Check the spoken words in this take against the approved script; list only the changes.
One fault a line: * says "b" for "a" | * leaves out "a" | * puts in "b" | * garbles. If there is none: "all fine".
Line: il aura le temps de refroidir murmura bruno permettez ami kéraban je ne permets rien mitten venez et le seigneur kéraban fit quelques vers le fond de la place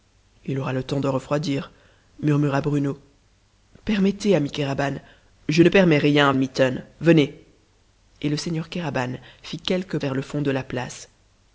all fine